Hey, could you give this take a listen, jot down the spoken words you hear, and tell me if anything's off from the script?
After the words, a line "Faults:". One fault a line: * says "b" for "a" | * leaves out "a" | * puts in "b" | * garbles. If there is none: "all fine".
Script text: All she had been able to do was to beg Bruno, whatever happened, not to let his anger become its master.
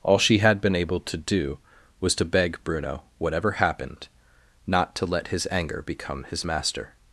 All she had been able to do was to beg Bruno, whatever happened, not to let his anger become his master.
Faults:
* says "his" for "its"